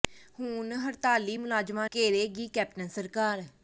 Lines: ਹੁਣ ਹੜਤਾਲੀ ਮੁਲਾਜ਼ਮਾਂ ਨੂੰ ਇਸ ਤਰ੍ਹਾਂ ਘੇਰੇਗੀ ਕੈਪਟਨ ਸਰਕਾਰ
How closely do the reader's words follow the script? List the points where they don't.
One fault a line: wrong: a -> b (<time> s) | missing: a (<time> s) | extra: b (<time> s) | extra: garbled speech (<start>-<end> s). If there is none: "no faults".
missing: ਨੂੰ ਇਸ ਤਰ੍ਹਾਂ (1.9 s)